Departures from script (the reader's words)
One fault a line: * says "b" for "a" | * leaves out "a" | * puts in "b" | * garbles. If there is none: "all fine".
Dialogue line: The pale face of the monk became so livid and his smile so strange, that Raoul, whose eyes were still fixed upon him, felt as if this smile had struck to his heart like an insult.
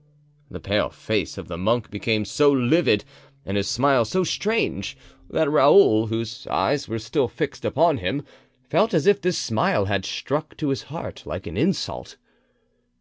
all fine